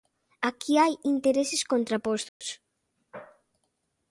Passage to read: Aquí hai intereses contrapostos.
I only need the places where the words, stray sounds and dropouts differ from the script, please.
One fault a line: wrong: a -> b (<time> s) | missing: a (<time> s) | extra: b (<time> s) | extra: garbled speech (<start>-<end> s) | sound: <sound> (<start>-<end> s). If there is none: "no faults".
sound: dropout (2.3-2.4 s)